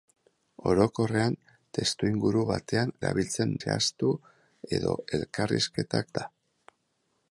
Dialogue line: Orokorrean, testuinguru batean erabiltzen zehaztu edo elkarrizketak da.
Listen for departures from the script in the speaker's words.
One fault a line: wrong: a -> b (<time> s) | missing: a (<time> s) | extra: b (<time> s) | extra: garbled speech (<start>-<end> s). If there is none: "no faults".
no faults